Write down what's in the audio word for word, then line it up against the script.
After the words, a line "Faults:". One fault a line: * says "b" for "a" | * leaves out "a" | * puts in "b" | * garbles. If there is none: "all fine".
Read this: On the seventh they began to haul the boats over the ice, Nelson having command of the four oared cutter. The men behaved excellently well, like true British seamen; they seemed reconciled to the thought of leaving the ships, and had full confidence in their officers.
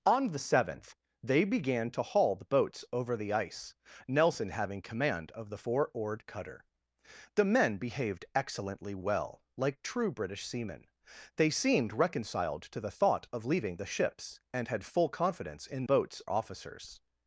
On the seventh they began to haul the boats over the ice, Nelson having command of the four oared cutter. The men behaved excellently well, like true British seamen; they seemed reconciled to the thought of leaving the ships, and had full confidence in boats officers.
Faults:
* says "boats" for "their"